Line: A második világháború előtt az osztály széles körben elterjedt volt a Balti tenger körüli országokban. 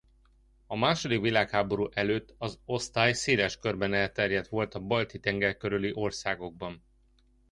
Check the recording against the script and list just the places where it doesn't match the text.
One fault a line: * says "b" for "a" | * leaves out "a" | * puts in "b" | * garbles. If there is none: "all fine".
all fine